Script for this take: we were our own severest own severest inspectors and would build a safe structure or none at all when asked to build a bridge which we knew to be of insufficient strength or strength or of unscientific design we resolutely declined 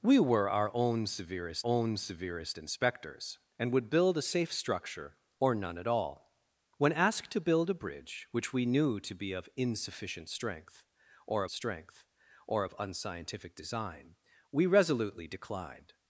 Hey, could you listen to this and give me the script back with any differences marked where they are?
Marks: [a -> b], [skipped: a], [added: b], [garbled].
we were our own severest own severest inspectors and would build a safe structure or none at all when asked to build a bridge which we knew to be of insufficient strength or strength or of unscientific design we resolutely declined